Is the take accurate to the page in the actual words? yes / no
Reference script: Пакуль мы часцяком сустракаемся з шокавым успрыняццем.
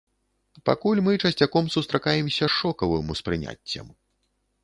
yes